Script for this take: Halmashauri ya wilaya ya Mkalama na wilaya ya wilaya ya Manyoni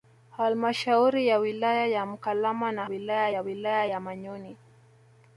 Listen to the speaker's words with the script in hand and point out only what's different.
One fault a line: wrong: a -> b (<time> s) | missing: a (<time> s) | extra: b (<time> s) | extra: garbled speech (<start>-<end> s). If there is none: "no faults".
no faults